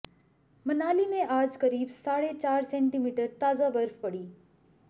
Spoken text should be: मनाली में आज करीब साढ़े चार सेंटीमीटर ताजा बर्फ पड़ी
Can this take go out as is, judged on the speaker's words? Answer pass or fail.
pass